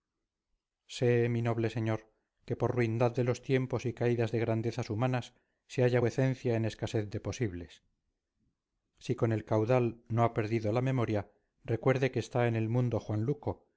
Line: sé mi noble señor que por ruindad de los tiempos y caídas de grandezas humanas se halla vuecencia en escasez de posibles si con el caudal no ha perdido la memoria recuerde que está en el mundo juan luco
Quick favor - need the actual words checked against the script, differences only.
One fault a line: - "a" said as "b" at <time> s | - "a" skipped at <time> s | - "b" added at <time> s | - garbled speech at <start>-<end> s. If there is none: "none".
none